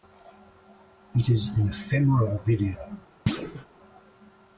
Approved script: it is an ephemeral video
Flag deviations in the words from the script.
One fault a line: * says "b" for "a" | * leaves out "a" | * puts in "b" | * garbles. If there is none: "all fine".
all fine